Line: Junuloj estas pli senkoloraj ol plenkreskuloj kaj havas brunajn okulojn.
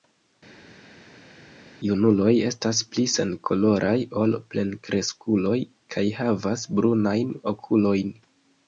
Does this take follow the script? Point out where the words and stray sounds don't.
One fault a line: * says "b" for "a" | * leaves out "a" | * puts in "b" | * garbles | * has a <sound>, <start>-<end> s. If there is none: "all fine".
all fine